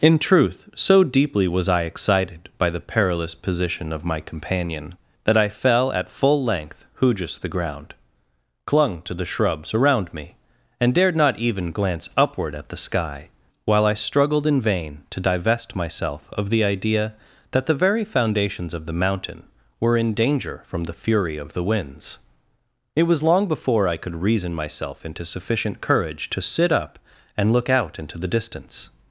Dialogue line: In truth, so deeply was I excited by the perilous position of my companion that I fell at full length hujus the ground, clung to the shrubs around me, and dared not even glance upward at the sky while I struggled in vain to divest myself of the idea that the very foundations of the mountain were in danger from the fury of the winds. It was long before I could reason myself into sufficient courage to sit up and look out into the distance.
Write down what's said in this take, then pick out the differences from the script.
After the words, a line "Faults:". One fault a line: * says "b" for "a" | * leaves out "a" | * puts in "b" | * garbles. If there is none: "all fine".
In truth, so deeply was I excited by the perilous position of my companion that I fell at full length hujus the ground, clung to the shrubs around me, and dared not even glance upward at the sky while I struggled in vain to divest myself of the idea that the very foundations of the mountain were in danger from the fury of the winds. It was long before I could reason myself into sufficient courage to sit up and look out into the distance.
Faults:
all fine